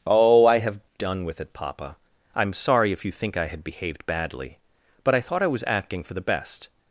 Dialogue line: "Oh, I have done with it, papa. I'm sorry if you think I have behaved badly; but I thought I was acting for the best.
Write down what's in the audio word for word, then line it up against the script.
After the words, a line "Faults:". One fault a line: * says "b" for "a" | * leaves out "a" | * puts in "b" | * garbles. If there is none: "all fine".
"Oh, I have done with it, papa. I'm sorry if you think I had behaved badly; but I thought I was acting for the best.
Faults:
* says "had" for "have"